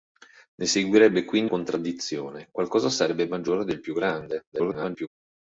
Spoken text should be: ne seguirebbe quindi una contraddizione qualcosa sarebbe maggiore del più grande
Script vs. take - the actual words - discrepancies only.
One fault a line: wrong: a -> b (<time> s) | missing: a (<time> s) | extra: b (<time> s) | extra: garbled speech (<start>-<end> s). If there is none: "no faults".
missing: una (1.5 s)
extra: garbled speech (4.5-5.1 s)